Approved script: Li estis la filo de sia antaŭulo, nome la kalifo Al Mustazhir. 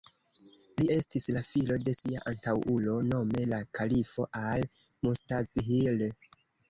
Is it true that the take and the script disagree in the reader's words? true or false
false